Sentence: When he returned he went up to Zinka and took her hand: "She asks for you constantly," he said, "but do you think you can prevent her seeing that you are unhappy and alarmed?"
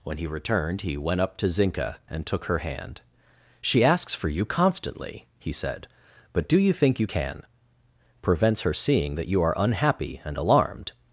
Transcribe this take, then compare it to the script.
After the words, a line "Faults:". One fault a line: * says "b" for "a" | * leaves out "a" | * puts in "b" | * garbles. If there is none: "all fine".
When he returned he went up to Zinka and took her hand: "She asks for you constantly," he said, "but do you think you can prevents her seeing that you are unhappy and alarmed?"
Faults:
* says "prevents" for "prevent"